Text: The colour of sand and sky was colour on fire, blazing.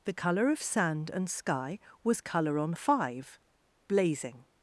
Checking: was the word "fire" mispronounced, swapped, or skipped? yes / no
yes